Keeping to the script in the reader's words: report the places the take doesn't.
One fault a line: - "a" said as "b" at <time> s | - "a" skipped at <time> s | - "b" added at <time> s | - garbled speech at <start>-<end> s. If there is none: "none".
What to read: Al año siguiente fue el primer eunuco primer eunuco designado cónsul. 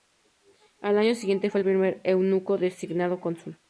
- "primer eunuco" skipped at 2.6 s